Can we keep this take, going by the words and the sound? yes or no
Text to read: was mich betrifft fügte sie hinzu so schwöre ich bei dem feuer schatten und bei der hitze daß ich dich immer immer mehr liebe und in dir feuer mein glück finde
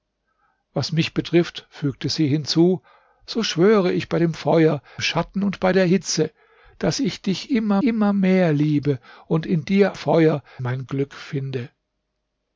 yes